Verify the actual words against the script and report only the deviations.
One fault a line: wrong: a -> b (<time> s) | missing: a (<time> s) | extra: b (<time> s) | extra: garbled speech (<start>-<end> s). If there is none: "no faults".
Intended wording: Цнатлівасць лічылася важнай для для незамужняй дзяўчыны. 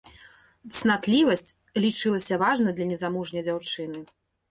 missing: для (2.9 s)